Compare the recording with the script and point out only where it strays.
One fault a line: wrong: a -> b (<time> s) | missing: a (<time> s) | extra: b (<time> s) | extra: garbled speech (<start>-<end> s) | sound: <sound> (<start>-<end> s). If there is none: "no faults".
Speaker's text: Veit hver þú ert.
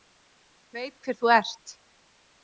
no faults